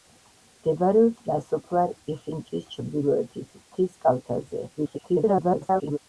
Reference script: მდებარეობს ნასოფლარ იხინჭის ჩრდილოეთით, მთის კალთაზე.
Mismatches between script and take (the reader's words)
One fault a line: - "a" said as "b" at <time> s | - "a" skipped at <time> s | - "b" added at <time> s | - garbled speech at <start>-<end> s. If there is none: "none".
- garbled speech at 4.8-6.0 s